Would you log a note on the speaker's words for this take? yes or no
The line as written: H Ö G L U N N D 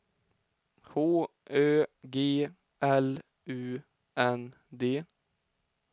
yes